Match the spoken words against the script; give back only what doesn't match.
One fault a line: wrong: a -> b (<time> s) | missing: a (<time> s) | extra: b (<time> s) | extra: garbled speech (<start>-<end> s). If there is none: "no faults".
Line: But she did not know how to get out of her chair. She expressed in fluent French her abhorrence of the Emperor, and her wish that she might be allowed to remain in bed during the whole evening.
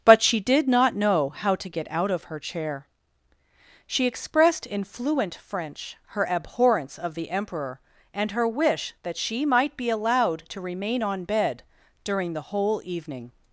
wrong: in -> on (11.0 s)